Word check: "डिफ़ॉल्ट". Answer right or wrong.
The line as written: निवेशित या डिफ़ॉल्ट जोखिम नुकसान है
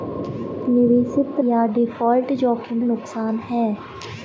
right